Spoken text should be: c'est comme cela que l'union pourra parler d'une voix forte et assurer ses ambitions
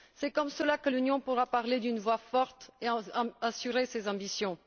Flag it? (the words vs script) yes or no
no